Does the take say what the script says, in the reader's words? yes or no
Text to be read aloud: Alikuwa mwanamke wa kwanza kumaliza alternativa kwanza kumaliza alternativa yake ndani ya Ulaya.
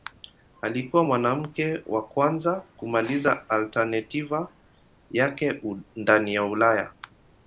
no